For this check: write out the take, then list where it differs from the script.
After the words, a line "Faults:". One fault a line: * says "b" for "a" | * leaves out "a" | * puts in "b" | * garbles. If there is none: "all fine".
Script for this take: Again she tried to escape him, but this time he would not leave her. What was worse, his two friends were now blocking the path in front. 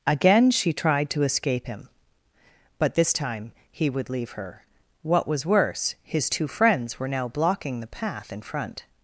Again she tried to escape him, but this time he would leave her. What was worse, his two friends were now blocking the path in front.
Faults:
* leaves out "not"